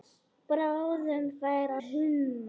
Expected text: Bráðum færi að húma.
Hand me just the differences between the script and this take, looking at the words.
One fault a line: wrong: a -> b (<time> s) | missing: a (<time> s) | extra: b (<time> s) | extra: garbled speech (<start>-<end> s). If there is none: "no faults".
missing: að (1.8 s)